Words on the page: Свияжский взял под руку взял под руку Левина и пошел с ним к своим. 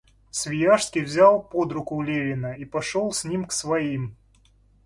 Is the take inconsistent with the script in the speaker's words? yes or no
yes